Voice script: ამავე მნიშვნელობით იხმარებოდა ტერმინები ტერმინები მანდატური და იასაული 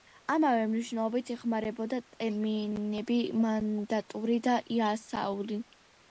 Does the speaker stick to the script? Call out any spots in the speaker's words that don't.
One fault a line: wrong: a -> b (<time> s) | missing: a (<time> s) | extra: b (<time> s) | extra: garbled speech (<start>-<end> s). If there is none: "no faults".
missing: ტერმინები (3.2 s)